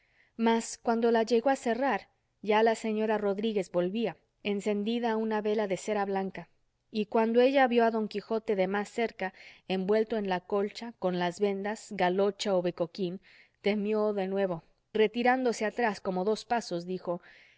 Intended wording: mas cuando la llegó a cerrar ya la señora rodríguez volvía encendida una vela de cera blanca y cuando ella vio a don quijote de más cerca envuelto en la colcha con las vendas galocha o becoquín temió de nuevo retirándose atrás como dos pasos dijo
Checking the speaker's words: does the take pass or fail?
pass